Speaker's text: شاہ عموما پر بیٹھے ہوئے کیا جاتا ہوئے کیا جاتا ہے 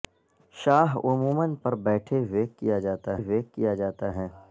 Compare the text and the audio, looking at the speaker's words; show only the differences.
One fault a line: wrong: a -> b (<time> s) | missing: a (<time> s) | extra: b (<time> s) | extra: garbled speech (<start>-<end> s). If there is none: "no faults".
no faults